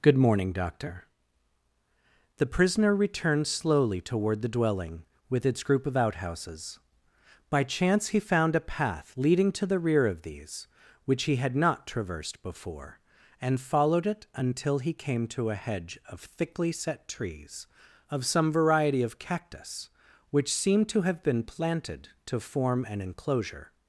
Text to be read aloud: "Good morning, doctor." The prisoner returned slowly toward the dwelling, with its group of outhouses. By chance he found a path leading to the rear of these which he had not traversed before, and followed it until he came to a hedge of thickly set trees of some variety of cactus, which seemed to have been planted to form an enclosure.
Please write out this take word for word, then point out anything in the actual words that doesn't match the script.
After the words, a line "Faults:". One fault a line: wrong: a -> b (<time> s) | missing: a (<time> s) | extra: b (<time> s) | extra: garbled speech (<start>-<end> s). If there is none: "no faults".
"Good morning, doctor." The prisoner returned slowly toward the dwelling, with its group of outhouses. By chance he found a path leading to the rear of these which he had not traversed before, and followed it until he came to a hedge of thickly set trees of some variety of cactus, which seemed to have been planted to form an enclosure.
Faults:
no faults